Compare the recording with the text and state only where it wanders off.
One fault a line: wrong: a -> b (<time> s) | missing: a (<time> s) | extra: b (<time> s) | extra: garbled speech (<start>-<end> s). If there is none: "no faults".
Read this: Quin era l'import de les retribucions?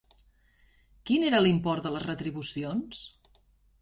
no faults